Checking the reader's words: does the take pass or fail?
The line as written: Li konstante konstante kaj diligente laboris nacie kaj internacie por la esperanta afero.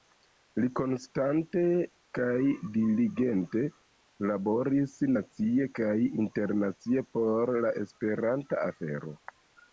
fail